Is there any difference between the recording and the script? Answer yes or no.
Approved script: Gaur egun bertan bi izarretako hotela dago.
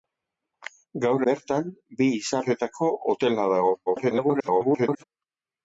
yes